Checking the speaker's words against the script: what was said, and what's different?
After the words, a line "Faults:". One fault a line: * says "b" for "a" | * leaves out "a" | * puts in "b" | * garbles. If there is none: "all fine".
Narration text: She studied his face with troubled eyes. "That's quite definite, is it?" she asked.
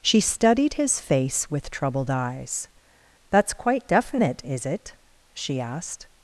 She studied his face with troubled eyes. "That's quite definite, is it?" she asked.
Faults:
all fine